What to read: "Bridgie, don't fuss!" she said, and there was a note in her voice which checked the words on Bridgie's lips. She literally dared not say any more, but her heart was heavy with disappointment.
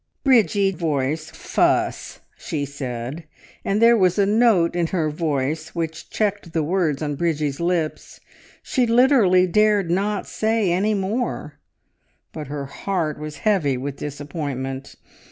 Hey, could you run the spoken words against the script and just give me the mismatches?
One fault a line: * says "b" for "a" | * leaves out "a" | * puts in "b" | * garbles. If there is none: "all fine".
* says "voice" for "don't"